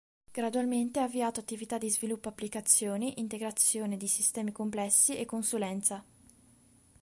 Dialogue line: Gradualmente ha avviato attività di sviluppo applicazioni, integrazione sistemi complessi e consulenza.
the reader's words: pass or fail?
fail